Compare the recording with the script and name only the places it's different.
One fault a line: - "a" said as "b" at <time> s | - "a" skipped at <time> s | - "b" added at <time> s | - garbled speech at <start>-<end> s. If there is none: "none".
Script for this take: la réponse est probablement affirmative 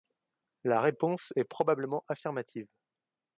none